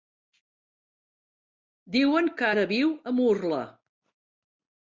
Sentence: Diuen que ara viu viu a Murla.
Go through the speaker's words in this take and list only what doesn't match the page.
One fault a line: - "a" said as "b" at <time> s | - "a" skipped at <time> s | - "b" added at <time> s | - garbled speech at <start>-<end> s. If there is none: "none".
- "viu" skipped at 2.9 s